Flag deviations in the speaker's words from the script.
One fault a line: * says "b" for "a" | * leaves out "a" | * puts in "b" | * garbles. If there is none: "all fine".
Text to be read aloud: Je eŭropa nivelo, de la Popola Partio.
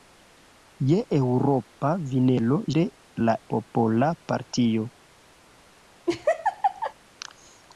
all fine